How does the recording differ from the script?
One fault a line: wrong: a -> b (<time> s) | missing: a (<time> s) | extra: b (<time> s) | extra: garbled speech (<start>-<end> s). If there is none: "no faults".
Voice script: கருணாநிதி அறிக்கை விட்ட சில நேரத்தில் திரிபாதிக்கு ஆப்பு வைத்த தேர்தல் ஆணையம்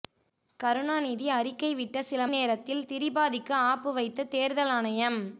no faults